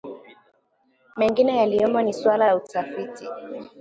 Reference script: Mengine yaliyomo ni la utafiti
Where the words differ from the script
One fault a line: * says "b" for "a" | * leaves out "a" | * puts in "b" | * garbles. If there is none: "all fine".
* puts in "suala"